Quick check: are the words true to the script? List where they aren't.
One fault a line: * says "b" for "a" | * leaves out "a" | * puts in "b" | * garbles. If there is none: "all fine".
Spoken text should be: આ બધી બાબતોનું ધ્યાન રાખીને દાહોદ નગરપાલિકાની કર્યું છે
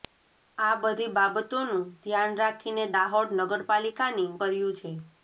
all fine